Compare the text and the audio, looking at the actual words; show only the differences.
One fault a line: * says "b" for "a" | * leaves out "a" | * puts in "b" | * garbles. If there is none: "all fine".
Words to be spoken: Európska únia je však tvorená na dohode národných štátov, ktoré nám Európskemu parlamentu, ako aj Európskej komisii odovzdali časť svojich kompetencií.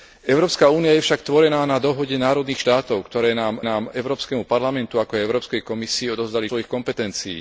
* puts in "nám"
* leaves out "časť"